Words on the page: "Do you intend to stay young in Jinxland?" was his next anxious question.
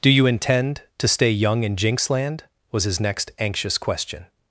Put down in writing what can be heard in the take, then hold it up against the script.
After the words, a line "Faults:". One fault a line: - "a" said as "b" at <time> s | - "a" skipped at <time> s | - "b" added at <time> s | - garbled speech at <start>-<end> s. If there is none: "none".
"Do you intend to stay young in Jinxland?" was his next anxious question.
Faults:
none